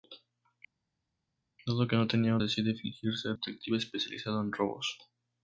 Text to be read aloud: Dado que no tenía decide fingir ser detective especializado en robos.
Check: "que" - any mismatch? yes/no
no